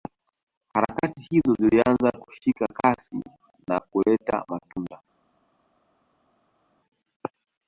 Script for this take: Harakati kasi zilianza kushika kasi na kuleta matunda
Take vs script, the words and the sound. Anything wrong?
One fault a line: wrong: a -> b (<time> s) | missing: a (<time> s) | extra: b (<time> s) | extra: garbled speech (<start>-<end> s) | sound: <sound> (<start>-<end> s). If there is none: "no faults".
wrong: kasi -> hizo (1.3 s)